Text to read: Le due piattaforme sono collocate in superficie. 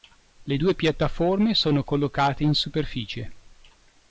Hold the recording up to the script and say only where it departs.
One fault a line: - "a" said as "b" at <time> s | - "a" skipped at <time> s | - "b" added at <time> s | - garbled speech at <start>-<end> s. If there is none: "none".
none